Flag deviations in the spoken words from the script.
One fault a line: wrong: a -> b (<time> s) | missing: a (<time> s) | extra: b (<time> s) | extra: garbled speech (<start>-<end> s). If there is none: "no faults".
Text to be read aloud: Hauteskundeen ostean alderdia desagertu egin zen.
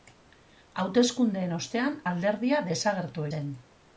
missing: egin (3.3 s)